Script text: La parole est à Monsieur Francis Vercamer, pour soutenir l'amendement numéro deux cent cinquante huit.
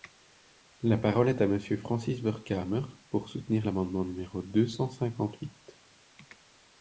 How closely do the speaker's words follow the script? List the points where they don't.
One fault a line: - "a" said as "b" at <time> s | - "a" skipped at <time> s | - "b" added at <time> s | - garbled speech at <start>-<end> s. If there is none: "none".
none